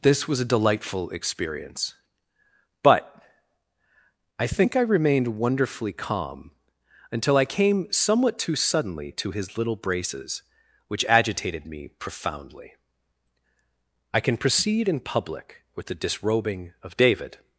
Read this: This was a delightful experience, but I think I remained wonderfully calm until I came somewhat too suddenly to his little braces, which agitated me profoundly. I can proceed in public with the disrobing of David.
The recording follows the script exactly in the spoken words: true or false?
true